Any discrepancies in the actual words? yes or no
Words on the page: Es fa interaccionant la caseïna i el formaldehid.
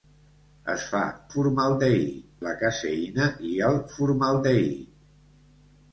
yes